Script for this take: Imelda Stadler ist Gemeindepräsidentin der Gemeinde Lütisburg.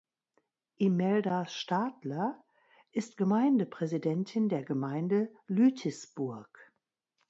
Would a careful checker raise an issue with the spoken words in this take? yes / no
no